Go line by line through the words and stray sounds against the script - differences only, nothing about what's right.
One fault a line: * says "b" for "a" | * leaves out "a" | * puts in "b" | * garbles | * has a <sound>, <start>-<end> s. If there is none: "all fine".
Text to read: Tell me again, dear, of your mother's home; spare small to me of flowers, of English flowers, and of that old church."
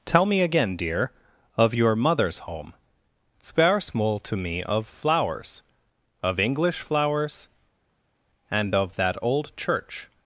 all fine